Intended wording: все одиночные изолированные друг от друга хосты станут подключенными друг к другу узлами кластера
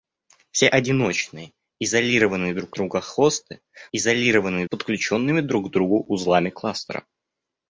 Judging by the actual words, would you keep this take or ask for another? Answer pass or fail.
fail